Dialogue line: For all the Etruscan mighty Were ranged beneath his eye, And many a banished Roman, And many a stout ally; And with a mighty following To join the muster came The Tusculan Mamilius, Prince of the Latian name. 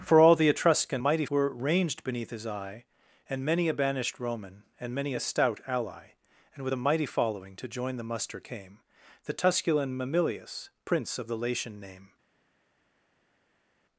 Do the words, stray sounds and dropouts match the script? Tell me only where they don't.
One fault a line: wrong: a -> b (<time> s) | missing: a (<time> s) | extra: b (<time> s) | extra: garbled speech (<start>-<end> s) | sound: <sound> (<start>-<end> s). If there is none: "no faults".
no faults